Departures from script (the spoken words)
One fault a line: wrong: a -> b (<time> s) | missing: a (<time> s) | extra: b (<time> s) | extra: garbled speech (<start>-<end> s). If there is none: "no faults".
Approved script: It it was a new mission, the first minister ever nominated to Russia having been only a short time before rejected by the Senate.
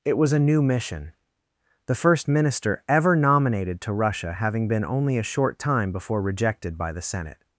missing: it (0.2 s)